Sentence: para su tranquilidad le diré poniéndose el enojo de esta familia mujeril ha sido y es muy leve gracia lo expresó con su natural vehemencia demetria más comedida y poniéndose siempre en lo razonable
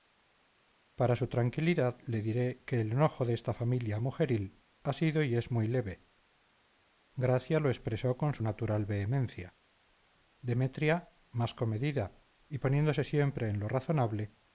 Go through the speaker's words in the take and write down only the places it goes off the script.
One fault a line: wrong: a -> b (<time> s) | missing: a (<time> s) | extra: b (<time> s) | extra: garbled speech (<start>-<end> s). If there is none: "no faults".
wrong: poniéndose -> que (2.6 s)